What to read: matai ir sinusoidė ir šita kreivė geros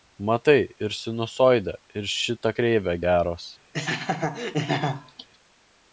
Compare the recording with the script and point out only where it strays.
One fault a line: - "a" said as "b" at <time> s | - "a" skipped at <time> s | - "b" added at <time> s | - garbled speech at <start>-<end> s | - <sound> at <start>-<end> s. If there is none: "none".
- laugh at 3.7-5.3 s